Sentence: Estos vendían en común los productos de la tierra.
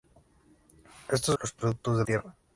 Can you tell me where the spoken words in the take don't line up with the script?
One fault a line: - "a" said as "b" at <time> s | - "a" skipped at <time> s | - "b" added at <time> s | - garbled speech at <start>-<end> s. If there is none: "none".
- "vendían en común" skipped at 1.4 s
- "la" skipped at 2.0 s